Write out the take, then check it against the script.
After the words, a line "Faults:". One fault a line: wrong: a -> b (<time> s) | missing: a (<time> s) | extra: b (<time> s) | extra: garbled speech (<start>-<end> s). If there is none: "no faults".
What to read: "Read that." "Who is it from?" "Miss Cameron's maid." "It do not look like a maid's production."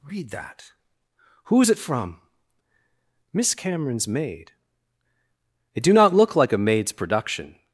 "Read that." "Who is it from?" "Miss Cameron's maid." "It do not look like a maid's production."
Faults:
no faults